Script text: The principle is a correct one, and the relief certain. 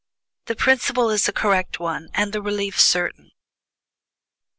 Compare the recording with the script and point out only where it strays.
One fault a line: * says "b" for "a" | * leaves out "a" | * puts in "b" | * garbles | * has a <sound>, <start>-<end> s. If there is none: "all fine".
all fine